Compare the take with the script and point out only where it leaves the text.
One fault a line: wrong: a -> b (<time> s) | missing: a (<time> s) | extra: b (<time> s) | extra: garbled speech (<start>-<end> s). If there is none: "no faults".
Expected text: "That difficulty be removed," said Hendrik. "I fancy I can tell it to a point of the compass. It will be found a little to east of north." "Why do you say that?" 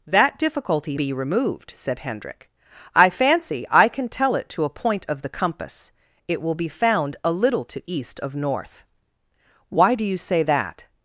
no faults